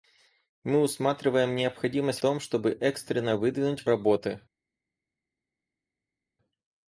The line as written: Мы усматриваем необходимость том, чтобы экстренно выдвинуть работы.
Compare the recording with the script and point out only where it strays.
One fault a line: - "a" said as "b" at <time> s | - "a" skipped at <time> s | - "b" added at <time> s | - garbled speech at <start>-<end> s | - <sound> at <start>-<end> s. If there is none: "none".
none